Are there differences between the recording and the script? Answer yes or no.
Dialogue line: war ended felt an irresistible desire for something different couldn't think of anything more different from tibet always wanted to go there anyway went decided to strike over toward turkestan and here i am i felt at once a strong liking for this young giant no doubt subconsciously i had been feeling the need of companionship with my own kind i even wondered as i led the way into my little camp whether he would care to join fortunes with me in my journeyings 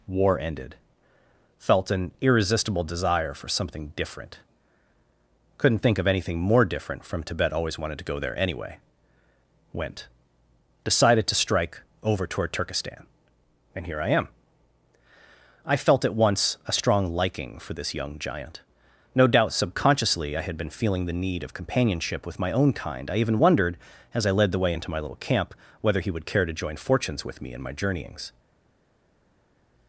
no